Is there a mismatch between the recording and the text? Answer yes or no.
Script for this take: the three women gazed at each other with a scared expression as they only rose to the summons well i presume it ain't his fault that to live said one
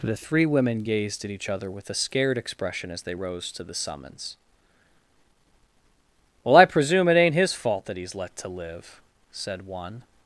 yes